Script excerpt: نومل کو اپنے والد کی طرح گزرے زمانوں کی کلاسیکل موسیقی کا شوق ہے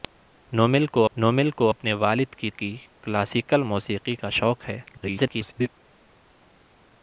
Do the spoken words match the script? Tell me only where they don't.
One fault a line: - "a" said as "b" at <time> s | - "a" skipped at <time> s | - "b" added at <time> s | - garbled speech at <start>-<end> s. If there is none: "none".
- "نومل کو" added at 1.2 s
- "طرح گزرے زمانوں" skipped at 2.5 s
- garbled speech at 4.9-5.7 s